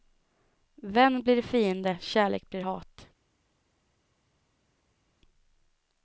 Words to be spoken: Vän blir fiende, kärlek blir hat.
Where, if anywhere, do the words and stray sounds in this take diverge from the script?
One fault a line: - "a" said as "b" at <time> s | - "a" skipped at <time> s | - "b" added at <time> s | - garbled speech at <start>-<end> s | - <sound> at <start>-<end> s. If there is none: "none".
none